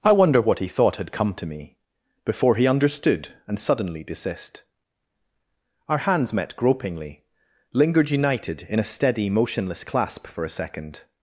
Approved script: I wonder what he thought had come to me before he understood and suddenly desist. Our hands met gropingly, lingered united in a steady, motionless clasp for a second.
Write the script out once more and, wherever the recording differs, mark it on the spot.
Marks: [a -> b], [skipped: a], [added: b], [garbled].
I wonder what he thought had come to me before he understood and suddenly desist. Our hands met gropingly, lingered united in a steady, motionless clasp for a second.